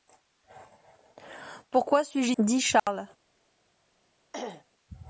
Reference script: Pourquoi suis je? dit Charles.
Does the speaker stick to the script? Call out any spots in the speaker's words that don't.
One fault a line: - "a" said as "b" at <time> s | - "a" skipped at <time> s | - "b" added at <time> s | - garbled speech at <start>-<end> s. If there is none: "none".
none